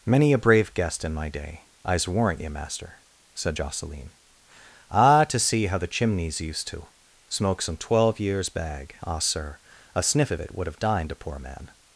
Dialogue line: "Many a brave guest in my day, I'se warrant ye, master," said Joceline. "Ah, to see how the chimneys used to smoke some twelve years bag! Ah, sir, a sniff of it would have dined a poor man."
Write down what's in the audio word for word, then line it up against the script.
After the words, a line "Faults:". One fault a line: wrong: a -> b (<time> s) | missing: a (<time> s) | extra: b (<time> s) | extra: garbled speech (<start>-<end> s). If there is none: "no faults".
"Many a brave guest in my day, I'se warrant ye, master," said Joceline. "Ah, to see how the chimneys used to smoke some twelve years bag! Ah, sir, a sniff of it would have dined a poor man."
Faults:
no faults